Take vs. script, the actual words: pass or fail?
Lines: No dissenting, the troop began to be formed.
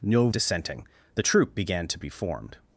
pass